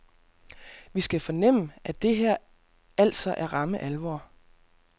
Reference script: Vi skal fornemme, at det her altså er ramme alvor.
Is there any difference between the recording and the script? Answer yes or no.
no